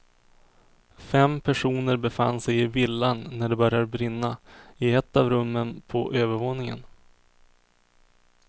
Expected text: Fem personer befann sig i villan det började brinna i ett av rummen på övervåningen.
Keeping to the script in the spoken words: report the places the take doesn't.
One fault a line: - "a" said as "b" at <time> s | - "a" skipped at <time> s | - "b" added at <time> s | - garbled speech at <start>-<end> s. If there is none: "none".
- "när" added at 3.3 s